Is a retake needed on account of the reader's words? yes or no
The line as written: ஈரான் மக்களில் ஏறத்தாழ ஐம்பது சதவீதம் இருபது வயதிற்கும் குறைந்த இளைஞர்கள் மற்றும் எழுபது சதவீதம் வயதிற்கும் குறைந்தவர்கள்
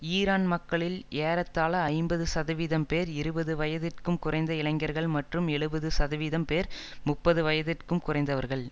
yes